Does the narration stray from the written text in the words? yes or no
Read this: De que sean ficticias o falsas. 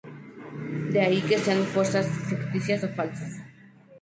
yes